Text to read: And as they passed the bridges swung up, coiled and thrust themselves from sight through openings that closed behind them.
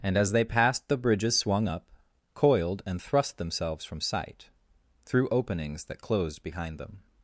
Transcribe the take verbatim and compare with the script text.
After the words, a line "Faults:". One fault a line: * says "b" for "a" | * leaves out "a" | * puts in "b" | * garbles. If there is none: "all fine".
And as they passed the bridges swung up, coiled and thrust themselves from sight through openings that closed behind them.
Faults:
all fine